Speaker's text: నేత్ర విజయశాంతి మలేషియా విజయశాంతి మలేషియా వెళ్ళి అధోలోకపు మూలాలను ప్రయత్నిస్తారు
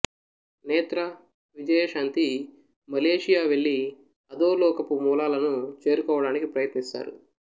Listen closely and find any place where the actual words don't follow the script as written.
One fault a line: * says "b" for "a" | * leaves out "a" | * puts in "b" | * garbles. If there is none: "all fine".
* leaves out "విజయశాంతి మలేషియా"
* puts in "చేరుకోవడానికి"